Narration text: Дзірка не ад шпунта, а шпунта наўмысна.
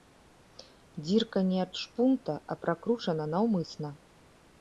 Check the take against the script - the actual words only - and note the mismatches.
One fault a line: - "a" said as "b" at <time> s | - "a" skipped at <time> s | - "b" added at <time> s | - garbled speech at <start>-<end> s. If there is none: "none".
- "шпунта" said as "пракручана" at 2.6 s